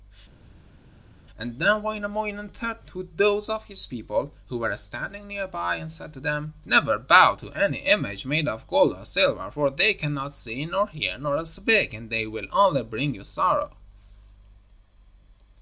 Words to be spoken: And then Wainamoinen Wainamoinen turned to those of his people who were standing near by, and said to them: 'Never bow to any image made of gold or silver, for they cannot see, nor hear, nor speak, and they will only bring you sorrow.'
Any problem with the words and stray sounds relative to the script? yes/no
yes